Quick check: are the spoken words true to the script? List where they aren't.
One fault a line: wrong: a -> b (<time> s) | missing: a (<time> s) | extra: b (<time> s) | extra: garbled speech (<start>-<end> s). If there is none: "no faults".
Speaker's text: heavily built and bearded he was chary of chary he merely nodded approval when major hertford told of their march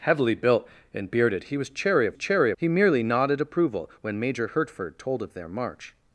no faults